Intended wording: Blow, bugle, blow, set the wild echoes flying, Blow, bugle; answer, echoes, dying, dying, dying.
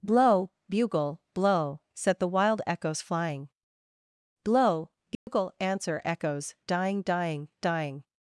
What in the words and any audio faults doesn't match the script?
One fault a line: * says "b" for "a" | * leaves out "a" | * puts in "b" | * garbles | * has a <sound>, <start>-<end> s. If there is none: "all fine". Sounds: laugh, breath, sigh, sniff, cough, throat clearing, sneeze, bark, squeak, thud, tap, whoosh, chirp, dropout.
* has a dropout, 5.2-5.3 s